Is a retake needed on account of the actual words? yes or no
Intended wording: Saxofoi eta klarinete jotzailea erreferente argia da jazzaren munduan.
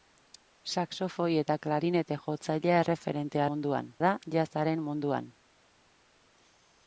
yes